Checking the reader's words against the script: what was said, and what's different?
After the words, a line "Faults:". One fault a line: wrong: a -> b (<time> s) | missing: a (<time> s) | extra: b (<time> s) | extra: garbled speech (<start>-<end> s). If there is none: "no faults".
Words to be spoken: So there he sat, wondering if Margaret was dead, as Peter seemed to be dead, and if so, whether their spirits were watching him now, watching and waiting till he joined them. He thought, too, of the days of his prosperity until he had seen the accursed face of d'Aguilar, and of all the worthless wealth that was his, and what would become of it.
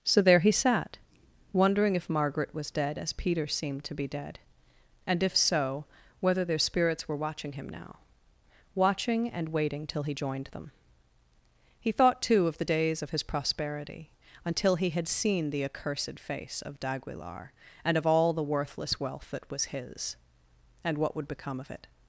So there he sat, wondering if Margaret was dead, as Peter seemed to be dead, and if so, whether their spirits were watching him now, watching and waiting till he joined them. He thought, too, of the days of his prosperity until he had seen the accursed face of d'Aguilar, and of all the worthless wealth that was his, and what would become of it.
Faults:
no faults